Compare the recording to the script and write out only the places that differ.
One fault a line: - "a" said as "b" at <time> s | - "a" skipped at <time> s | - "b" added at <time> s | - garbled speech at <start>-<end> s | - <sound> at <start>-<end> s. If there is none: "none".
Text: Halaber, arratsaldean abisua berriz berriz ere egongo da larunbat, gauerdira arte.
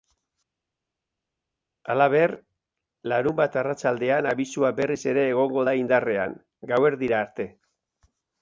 - "larunbat" added at 3.1 s
- "berriz" skipped at 5.0 s
- "larunbat" said as "indarrean" at 5.9 s